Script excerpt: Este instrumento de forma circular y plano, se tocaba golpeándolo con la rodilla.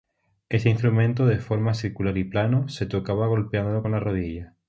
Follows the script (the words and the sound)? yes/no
yes